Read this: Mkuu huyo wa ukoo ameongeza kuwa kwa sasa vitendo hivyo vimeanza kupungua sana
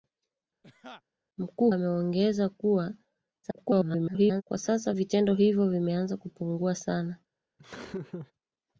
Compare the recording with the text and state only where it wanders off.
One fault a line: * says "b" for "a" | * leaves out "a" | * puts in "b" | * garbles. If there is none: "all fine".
* leaves out "huyo wa ukoo"
* garbles